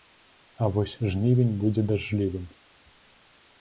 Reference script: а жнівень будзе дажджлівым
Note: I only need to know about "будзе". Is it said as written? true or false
true